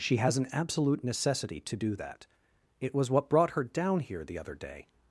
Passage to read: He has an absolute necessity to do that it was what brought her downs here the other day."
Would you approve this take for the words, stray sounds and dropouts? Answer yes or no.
no